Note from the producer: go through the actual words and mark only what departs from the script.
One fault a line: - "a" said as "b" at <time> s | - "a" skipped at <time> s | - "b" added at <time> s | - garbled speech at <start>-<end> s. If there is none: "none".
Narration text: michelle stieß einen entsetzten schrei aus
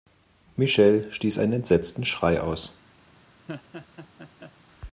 none